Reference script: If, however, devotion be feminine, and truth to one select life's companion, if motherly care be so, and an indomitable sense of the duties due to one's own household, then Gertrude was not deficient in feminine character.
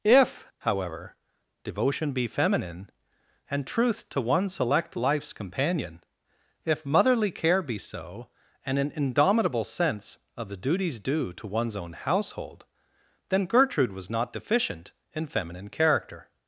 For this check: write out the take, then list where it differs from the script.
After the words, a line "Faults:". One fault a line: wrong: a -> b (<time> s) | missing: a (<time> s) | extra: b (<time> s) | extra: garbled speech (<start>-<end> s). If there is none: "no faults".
If, however, devotion be feminine, and truth to one select life's companion, if motherly care be so, and an indomitable sense of the duties due to one's own household, then Gertrude was not deficient in feminine character.
Faults:
no faults